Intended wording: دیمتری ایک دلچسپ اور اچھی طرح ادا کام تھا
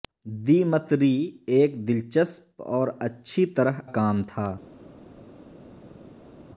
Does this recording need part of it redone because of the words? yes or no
yes